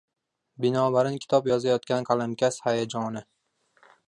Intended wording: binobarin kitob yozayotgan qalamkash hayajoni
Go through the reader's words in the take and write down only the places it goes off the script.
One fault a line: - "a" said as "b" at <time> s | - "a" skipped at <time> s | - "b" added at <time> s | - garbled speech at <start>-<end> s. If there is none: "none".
none